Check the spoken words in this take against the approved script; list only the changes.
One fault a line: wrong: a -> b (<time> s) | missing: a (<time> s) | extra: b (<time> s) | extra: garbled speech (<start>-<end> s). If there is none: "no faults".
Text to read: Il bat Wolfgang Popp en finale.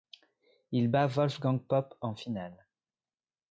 no faults